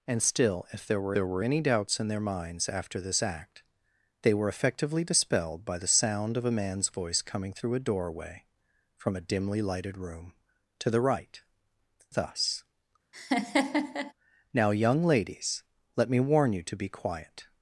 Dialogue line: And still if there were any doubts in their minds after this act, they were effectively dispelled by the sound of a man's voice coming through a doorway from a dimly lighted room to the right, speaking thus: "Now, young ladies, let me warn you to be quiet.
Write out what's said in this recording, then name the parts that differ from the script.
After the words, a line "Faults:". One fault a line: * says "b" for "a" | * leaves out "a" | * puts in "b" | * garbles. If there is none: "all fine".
And still if there were there were any doubts in their minds after this act, they were effectively dispelled by the sound of a man's voice coming through a doorway from a dimly lighted room to the right, thus: "Now, young ladies, let me warn you to be quiet.
Faults:
* puts in "there were"
* leaves out "speaking"